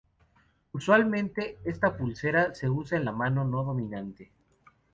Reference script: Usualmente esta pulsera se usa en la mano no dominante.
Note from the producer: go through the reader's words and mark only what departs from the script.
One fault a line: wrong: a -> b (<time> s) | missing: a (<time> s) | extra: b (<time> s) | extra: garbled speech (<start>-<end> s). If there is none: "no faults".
no faults